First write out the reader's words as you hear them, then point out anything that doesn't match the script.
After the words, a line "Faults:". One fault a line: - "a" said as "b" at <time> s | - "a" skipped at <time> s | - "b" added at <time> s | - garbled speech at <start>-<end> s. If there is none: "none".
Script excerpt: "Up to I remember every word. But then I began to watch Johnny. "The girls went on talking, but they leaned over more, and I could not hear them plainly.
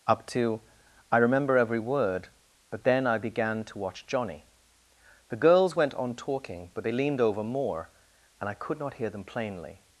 "Up to I remember every word. But then I began to watch Johnny. "The girls went on talking, but they leaned over more, and I could not hear them plainly.
Faults:
none